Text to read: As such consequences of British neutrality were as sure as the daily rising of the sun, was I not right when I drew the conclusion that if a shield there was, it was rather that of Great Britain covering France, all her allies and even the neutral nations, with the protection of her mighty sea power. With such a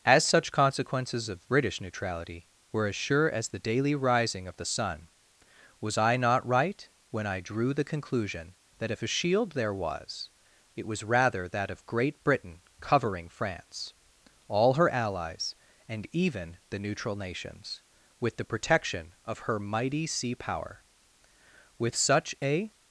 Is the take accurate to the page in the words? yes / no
yes